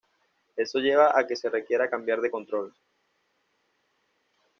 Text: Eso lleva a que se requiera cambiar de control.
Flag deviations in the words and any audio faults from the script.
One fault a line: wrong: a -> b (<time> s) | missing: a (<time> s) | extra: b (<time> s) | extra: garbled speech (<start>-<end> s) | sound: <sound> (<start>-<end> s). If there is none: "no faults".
no faults